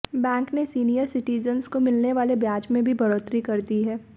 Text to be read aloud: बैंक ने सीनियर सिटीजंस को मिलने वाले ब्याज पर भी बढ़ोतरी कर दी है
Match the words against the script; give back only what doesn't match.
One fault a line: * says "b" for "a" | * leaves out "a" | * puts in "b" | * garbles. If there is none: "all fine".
* says "में" for "पर"